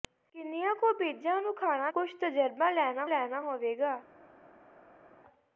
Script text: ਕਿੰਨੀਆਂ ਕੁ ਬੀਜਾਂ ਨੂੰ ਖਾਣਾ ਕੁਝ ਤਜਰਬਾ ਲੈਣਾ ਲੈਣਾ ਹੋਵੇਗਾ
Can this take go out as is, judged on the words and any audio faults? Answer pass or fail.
pass